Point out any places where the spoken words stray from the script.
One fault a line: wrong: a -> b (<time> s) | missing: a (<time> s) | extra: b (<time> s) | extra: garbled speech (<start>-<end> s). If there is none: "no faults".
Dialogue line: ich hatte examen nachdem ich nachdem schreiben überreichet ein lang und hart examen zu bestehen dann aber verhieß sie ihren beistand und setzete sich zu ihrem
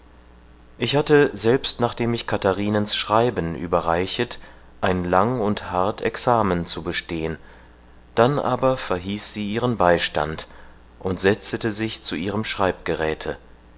wrong: examen -> selbst (1.4 s)
wrong: nachdem -> katharinens (2.2 s)